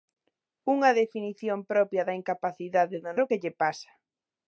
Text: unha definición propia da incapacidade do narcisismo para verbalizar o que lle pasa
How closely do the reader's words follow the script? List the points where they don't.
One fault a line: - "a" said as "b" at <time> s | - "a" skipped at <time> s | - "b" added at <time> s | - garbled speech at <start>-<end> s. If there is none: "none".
- "narcisismo para verbalizar" skipped at 3.1 s